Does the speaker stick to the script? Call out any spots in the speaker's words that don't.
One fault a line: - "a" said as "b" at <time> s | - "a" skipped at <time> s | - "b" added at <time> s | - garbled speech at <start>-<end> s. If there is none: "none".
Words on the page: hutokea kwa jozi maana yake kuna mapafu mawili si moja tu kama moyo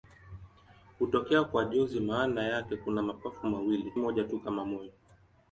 - "si" skipped at 3.9 s